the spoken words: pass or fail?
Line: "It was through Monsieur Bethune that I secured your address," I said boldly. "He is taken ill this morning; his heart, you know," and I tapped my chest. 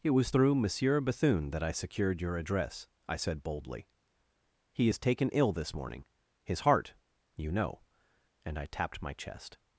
pass